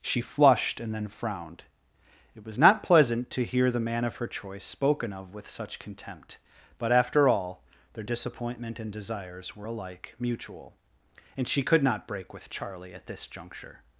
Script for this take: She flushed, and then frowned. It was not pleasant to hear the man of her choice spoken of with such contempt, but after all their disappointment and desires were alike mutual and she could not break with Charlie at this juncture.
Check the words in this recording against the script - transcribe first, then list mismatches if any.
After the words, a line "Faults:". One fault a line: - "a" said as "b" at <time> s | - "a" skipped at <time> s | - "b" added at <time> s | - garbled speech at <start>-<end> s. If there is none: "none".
She flushed, and then frowned. It was not pleasant to hear the man of her choice spoken of with such contempt, but after all their disappointment and desires were alike mutual and she could not break with Charlie at this juncture.
Faults:
none